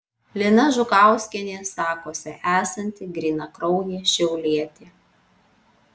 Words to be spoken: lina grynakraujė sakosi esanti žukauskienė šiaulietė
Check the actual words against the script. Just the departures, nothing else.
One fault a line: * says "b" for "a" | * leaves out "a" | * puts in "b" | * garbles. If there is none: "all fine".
* says "žukauskienė" for "grynakraujė"
* says "grynakraujė" for "žukauskienė"